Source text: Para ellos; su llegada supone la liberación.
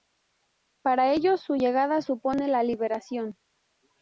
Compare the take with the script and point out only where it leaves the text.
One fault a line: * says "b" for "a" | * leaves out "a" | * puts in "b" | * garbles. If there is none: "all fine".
all fine